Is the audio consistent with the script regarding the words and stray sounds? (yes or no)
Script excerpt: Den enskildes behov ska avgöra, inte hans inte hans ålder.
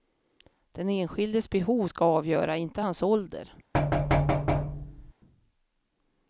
no